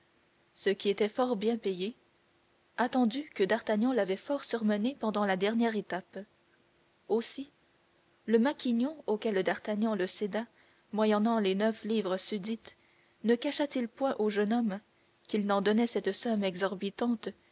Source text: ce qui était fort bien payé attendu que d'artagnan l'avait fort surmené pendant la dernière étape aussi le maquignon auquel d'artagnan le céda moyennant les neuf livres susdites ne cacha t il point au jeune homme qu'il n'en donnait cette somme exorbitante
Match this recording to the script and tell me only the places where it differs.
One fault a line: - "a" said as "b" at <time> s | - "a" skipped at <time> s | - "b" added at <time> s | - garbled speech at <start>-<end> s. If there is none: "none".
none